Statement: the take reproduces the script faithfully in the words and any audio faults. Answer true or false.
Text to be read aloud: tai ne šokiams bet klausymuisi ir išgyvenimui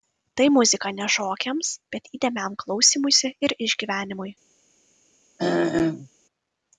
false